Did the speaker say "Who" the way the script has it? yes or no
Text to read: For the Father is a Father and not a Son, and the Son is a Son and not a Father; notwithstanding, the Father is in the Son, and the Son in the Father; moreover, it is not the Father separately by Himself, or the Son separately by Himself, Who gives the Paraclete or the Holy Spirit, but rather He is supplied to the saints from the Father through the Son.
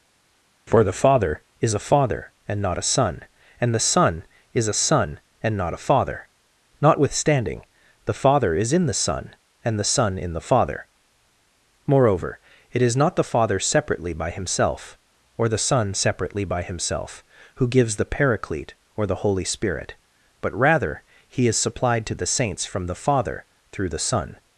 yes